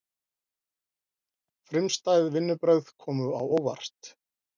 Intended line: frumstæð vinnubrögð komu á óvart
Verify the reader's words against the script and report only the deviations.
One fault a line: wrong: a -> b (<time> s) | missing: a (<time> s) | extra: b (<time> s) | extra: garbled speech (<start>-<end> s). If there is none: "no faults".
no faults